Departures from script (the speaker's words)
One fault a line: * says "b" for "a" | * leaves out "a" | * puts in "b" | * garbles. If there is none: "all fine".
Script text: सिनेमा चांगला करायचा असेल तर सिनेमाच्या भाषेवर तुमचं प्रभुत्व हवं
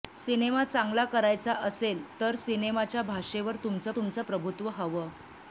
* puts in "तुमचं"